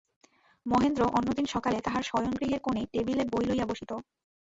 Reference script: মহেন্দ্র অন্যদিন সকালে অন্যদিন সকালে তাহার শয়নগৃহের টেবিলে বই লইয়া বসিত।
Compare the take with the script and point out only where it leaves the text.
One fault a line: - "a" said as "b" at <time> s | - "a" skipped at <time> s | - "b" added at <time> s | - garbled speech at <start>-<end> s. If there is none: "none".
- "অন্যদিন সকালে" skipped at 1.8 s
- "কোণে" added at 2.6 s